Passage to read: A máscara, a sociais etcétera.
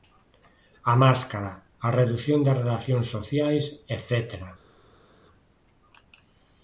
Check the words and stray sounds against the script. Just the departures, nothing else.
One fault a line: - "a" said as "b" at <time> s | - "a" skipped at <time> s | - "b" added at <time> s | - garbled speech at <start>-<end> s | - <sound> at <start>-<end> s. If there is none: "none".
- "redución das relacións" added at 2.0 s